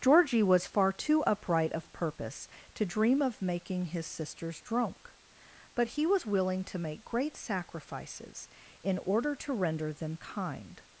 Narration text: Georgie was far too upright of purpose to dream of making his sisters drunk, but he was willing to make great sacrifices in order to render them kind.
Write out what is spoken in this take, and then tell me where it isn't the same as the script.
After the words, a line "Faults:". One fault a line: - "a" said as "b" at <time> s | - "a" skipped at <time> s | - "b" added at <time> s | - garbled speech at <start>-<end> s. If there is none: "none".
Georgie was far too upright of purpose to dream of making his sisters drunk, but he was willing to make great sacrifices in order to render them kind.
Faults:
none